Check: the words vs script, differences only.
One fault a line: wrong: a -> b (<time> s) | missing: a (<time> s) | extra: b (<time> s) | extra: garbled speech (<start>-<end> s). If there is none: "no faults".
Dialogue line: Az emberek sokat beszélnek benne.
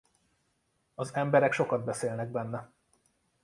no faults